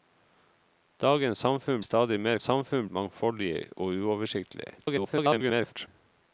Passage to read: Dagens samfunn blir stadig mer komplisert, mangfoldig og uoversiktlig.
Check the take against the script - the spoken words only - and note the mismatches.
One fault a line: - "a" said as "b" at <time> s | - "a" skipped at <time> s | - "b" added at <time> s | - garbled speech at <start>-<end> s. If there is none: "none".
- "blir" skipped at 1.8 s
- "komplisert" said as "samfunn" at 2.4 s
- garbled speech at 4.8-5.9 s